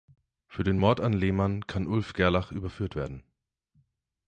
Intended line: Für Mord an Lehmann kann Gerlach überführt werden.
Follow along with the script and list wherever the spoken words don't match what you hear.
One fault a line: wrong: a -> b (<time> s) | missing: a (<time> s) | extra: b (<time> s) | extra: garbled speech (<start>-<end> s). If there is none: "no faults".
extra: den (0.6 s)
extra: Ulf (1.8 s)